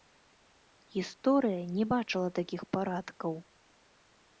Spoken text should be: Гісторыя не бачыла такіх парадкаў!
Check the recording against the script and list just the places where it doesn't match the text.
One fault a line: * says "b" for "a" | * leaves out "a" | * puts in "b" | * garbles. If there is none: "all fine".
all fine